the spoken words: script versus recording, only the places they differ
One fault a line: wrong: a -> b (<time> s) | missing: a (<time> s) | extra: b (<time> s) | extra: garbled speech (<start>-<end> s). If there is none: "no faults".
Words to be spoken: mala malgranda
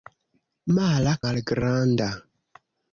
no faults